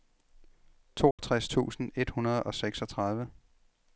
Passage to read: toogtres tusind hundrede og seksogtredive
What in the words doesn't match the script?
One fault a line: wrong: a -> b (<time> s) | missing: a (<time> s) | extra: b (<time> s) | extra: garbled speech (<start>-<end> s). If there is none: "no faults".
extra: et (2.0 s)